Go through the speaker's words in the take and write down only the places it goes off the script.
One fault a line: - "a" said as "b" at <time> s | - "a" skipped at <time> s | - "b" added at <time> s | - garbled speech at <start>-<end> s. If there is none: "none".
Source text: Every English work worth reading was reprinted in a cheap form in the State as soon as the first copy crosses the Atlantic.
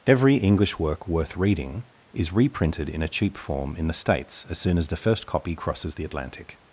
- "was" said as "is" at 2.1 s
- "State" said as "States" at 3.9 s